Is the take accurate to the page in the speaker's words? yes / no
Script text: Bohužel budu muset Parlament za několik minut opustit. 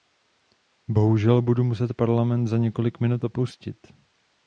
yes